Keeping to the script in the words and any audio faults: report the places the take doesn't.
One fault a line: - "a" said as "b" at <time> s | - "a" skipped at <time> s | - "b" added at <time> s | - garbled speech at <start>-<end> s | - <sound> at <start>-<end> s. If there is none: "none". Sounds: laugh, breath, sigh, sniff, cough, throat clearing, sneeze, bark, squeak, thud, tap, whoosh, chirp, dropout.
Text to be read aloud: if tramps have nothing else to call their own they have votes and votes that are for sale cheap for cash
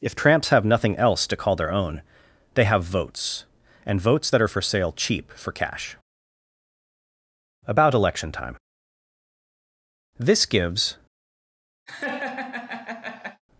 - "about election time this gives" added at 7.7 s
- laugh at 11.9-13.4 s